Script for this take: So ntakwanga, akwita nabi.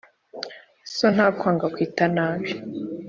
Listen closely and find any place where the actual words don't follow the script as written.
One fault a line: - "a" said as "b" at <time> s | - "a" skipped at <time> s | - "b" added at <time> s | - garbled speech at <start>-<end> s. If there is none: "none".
none